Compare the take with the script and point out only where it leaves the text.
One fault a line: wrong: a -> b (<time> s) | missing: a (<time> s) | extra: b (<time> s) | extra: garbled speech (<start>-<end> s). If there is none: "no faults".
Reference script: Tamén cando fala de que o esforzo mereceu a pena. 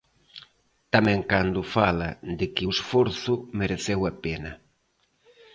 no faults